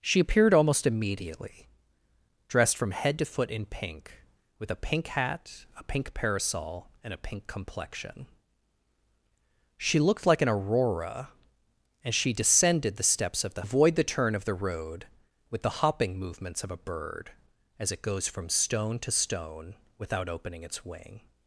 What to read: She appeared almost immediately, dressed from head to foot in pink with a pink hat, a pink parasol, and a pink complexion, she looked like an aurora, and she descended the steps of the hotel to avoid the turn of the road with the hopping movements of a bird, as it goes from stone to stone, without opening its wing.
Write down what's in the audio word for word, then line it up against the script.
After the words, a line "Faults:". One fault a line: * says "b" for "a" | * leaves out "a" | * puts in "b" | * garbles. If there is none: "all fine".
She appeared almost immediately, dressed from head to foot in pink with a pink hat, a pink parasol, and a pink complexion, she looked like an aurora, and she descended the steps of the avoid the turn of the road with the hopping movements of a bird, as it goes from stone to stone, without opening its wing.
Faults:
* leaves out "hotel to"